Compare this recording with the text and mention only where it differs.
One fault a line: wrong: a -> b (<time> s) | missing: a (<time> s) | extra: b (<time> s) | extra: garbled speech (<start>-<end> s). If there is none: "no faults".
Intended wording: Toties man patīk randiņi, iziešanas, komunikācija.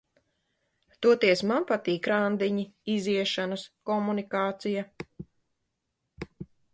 no faults